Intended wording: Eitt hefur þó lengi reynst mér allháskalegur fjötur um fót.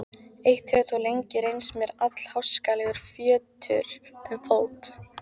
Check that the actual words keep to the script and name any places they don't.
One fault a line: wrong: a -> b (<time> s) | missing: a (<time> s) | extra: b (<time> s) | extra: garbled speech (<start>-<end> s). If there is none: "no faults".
no faults